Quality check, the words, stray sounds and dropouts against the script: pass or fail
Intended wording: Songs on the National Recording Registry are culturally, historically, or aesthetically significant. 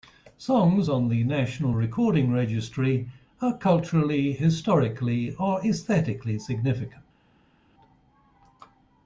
pass